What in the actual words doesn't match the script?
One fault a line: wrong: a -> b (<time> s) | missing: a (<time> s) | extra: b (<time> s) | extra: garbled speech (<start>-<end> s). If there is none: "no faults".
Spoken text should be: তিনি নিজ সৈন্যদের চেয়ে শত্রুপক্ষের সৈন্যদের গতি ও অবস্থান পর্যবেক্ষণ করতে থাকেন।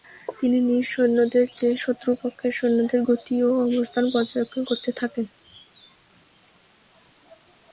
no faults